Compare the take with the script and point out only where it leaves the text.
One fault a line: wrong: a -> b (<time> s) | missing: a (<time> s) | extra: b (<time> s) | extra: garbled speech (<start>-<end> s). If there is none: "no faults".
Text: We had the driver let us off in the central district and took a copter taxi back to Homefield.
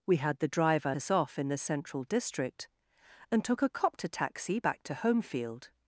missing: let (0.9 s)